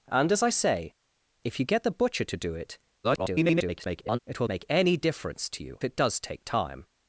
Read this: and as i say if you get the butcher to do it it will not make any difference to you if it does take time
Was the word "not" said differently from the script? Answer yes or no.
yes